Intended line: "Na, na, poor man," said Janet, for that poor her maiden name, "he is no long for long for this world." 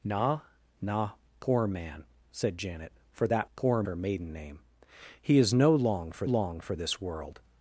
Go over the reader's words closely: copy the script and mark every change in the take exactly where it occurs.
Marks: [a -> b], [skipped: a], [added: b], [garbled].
"Na, na, poor man," said Janet, for that poor her maiden name, "he is no long for long for this world."